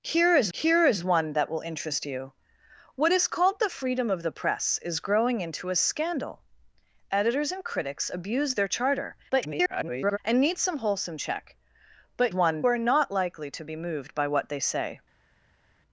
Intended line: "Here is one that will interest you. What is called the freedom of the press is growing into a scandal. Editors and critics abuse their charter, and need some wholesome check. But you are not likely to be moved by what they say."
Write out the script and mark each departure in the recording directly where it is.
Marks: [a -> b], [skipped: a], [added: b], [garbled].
"Here is [added: here is] one that will interest you. What is called the freedom of the press is growing into a scandal. Editors and critics abuse their charter, [garbled] and need some wholesome check. But [you -> one] are not likely to be moved by what they say."